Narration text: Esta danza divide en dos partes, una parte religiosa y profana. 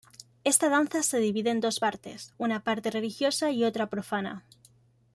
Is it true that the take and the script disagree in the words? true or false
true